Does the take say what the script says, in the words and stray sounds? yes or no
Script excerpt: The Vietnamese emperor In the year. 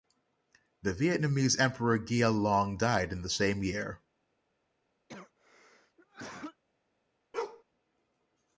no